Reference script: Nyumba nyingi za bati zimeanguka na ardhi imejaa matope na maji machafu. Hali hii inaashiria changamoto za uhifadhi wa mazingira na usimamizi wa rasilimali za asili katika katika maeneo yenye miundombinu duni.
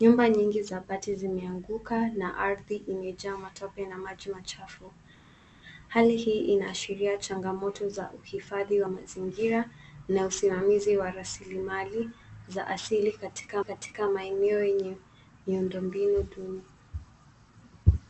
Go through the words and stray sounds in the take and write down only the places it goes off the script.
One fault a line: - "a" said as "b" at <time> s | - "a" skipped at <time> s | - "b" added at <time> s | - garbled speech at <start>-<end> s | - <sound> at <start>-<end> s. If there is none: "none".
none